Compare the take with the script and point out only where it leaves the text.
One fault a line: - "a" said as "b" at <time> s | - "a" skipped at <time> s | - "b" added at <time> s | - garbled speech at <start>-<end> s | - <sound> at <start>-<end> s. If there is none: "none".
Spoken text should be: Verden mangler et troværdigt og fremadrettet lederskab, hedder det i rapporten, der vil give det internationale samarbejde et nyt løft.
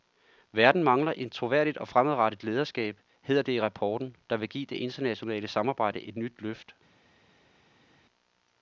none